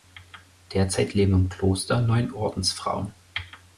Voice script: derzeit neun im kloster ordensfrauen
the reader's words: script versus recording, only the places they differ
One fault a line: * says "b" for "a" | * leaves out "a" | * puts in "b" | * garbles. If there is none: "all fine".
* says "leben" for "neun"
* puts in "neun"